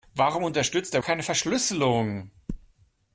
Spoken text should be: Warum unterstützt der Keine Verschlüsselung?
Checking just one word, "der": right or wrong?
right